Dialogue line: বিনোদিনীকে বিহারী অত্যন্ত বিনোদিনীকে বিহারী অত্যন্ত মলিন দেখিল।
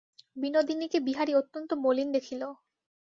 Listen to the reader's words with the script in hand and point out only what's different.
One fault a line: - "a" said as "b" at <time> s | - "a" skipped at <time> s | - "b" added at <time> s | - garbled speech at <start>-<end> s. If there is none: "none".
- "বিনোদিনীকে বিহারী অত্যন্ত" skipped at 1.7 s